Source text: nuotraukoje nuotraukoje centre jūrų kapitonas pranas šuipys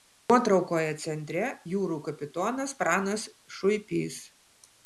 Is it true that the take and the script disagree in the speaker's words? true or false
true